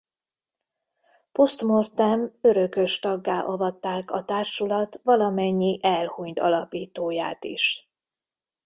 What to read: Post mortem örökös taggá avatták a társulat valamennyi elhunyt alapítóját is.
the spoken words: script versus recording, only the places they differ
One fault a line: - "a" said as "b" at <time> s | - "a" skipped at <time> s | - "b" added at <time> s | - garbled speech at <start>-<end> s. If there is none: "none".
none